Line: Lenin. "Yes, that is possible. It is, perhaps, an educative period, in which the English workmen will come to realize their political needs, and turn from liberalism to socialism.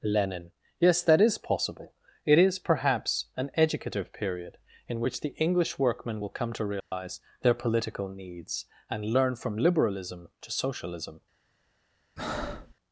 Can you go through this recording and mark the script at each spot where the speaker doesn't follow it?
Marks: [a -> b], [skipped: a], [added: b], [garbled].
Lenin. "Yes, that is possible. It is, perhaps, an educative period, in which the English workmen will come to realize their political needs, and [turn -> learn] from liberalism to socialism.